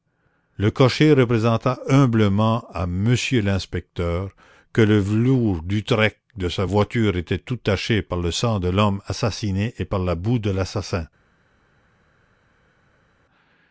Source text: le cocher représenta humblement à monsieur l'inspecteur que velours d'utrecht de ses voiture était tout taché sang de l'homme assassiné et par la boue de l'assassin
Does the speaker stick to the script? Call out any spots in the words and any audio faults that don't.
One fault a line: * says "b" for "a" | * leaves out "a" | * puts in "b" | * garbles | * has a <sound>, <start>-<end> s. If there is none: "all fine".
* puts in "le"
* says "sa" for "ses"
* puts in "par le"